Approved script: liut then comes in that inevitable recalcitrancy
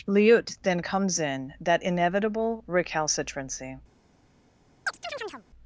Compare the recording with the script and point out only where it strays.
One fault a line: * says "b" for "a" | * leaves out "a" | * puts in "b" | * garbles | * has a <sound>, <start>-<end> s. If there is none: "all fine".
* has a chirp, 4.9-5.5 s